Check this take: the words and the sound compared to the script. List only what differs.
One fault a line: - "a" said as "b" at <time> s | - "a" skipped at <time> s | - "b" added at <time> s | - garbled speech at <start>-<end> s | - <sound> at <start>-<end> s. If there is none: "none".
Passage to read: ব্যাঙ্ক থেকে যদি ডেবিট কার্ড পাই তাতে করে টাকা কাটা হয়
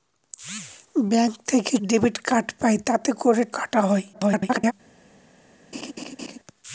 - "যদি" skipped at 1.7 s
- "টাকা" skipped at 3.4 s
- garbled speech at 4.1-4.7 s
- laugh at 5.7-6.4 s